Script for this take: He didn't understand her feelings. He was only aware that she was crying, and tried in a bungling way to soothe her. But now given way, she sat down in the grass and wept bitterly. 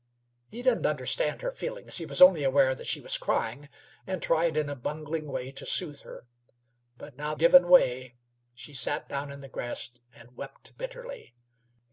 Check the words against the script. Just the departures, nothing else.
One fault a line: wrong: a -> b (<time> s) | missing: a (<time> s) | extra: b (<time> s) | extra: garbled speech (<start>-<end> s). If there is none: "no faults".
no faults